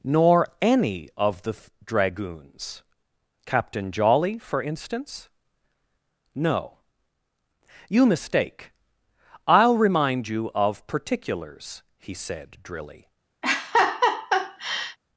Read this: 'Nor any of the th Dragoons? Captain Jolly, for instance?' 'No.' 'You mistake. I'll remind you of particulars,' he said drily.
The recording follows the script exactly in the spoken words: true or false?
true